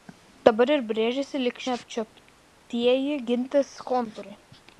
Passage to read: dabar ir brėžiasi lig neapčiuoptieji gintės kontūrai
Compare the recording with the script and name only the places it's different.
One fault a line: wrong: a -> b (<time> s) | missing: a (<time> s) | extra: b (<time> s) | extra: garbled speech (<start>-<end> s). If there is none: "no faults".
no faults